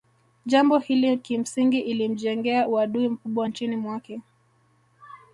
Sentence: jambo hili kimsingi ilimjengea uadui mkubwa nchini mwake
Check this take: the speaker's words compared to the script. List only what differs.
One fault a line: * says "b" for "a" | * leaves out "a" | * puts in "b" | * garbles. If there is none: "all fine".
all fine